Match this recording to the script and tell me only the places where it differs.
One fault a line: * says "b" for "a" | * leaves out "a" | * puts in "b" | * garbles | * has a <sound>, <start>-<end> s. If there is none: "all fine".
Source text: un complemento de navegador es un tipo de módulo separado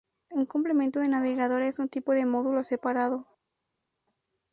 all fine